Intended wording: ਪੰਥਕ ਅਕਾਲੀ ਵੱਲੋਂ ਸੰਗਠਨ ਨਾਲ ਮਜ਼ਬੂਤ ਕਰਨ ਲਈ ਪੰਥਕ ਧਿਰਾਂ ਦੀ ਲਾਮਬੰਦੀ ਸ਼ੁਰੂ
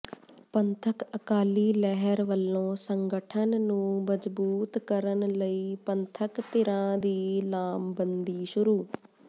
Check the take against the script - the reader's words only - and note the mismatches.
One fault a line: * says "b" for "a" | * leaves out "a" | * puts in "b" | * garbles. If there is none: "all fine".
* puts in "ਲਹਿਰ"
* says "ਨੂੰ" for "ਨਾਲ"